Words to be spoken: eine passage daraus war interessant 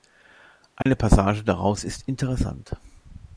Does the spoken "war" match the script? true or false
false